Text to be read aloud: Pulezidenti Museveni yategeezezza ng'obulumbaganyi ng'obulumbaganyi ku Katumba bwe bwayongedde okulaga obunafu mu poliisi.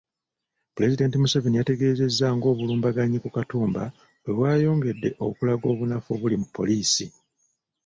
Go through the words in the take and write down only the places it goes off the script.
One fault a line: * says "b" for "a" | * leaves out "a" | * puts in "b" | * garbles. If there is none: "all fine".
* leaves out "ng'obulumbaganyi"
* puts in "obuli"